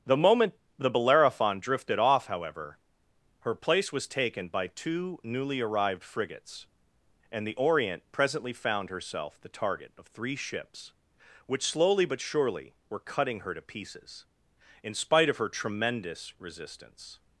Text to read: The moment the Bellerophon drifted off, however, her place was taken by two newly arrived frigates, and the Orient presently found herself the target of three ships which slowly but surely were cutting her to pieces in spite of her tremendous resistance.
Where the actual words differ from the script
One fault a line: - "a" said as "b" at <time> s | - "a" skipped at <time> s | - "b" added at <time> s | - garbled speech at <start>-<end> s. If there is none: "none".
none